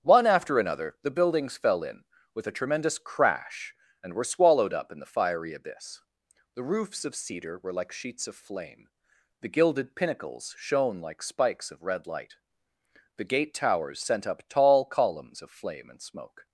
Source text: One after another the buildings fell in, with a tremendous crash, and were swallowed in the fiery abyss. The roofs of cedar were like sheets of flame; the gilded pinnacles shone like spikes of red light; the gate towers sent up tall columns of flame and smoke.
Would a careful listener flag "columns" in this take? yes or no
no